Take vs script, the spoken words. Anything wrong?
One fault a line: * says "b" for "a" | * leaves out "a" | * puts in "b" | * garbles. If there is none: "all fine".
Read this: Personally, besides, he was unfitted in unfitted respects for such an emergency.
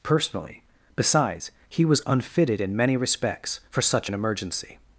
* says "many" for "unfitted"